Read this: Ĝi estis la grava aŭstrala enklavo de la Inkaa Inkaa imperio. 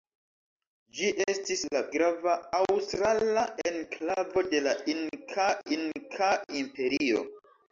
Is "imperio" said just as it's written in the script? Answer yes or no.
yes